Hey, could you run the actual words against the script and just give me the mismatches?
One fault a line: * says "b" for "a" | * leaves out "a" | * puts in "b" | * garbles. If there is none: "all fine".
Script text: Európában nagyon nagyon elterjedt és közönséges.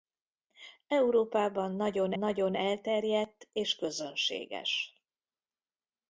all fine